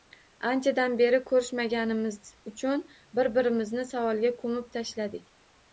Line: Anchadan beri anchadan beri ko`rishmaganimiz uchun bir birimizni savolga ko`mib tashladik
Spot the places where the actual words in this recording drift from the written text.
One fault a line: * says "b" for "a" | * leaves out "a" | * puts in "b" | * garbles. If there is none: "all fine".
* leaves out "anchadan beri"